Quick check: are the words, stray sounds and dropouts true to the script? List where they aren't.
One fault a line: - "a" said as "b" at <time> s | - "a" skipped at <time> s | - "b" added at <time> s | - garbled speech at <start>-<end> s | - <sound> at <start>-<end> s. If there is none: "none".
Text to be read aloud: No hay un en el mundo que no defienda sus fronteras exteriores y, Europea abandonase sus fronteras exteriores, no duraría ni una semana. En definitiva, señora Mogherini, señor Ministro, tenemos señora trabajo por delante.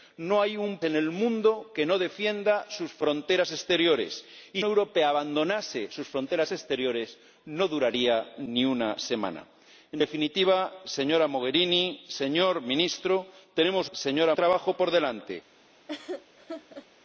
- laugh at 15.9-16.9 s